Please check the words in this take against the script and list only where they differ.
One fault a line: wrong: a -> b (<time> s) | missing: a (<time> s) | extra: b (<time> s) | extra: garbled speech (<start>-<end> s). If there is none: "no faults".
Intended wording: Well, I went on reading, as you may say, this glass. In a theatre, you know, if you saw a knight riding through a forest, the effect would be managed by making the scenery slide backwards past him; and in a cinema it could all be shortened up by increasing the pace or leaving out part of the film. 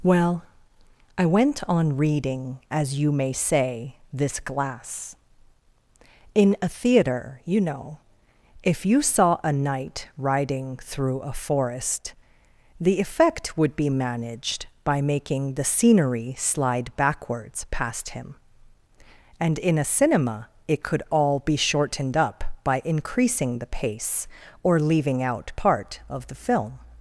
no faults